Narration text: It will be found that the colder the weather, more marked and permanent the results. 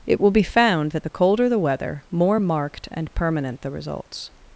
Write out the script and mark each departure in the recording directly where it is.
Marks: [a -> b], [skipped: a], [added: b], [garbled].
It will be found that the colder the weather, more marked and permanent the results.